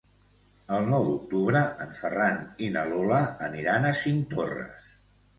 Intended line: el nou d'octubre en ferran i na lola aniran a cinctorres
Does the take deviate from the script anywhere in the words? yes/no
no